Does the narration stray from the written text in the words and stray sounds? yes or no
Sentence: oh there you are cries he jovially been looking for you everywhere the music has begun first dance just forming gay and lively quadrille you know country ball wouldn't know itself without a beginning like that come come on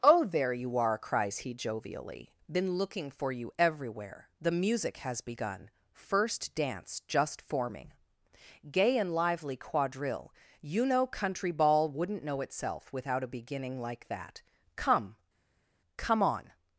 no